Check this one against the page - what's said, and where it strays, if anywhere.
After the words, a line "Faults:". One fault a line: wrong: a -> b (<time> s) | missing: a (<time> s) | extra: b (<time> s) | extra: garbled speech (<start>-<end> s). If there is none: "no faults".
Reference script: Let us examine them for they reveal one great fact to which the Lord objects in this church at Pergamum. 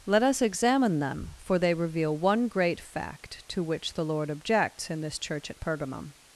Let us examine them for they reveal one great fact to which the Lord objects in this church at Pergamum.
Faults:
no faults